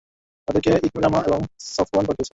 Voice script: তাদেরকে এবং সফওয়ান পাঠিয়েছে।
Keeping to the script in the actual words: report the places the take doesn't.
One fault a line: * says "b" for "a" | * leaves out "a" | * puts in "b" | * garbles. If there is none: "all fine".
* puts in "ইকরামা"